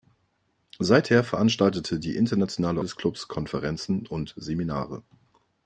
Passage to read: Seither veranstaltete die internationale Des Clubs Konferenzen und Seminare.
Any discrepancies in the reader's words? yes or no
no